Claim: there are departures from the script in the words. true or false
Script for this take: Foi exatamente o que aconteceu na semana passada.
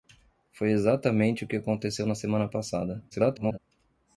true